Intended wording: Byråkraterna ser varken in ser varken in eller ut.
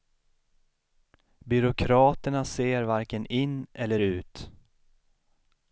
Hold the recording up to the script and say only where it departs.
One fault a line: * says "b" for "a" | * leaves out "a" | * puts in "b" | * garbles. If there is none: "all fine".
* leaves out "ser varken in"